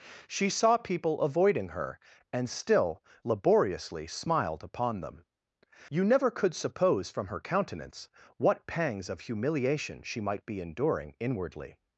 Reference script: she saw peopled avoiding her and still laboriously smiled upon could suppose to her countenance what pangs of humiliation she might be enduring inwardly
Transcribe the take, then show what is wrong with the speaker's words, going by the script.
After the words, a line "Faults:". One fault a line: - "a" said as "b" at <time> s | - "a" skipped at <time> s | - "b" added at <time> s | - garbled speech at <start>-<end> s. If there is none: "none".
she saw people avoiding her and still laboriously smiled upon them you never could suppose from her countenance what pangs of humiliation she might be enduring inwardly
Faults:
- "peopled" said as "people" at 0.8 s
- "them you never" added at 5.0 s
- "to" said as "from" at 7.1 s